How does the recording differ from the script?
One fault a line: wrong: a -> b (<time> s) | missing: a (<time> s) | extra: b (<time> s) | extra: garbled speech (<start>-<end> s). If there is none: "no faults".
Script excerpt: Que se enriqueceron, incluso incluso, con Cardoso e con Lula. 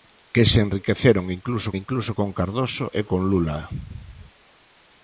no faults